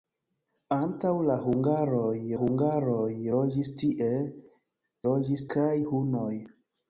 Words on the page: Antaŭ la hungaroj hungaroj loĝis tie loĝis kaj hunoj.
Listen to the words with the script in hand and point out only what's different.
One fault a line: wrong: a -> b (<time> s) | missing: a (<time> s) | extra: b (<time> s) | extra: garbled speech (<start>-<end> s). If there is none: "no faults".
no faults